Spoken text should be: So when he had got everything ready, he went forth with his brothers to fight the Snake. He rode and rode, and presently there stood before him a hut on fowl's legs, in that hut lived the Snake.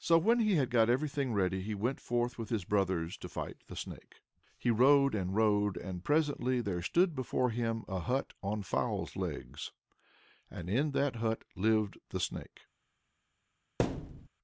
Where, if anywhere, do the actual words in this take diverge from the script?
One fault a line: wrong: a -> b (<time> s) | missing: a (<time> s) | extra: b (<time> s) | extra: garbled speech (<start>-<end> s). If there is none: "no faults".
extra: and (10.5 s)